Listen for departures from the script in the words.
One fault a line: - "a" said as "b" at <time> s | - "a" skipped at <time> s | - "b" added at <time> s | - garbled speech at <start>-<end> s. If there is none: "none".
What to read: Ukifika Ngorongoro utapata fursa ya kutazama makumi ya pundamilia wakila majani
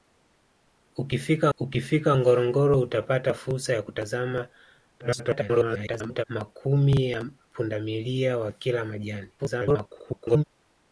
- "ukifika" added at 1.6 s
- garbled speech at 5.0-6.2 s
- garbled speech at 9.4-10.4 s